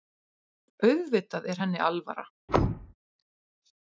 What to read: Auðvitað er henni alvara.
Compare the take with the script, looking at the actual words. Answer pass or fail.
pass